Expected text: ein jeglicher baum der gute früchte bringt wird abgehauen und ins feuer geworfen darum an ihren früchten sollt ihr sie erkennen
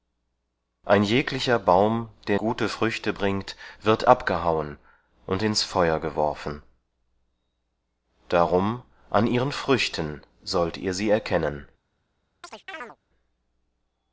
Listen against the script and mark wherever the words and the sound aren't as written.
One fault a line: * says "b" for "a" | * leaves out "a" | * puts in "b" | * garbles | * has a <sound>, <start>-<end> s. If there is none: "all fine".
* has a chirp, 12.4-13.0 s